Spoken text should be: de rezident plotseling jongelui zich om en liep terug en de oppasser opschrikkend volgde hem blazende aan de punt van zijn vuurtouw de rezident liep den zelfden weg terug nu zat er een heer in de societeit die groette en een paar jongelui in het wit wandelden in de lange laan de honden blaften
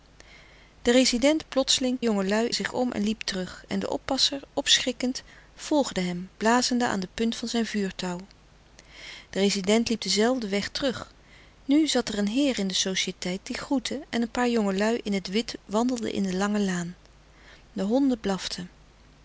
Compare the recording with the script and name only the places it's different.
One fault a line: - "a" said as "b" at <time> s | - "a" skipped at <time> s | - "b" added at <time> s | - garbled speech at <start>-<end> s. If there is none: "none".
none